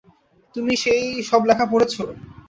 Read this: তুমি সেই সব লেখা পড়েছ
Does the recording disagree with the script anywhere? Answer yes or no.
no